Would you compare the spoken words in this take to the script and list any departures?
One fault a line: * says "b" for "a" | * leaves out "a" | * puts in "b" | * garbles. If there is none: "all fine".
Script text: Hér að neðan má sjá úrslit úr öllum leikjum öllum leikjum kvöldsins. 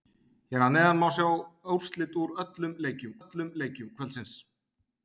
all fine